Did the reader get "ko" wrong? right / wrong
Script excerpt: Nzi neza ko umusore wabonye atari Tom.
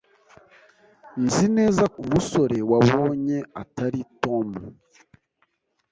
wrong